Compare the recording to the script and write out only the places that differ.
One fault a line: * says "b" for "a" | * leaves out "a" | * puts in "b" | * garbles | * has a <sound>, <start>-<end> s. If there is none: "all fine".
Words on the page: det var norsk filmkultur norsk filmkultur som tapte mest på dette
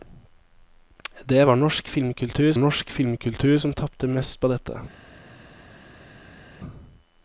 all fine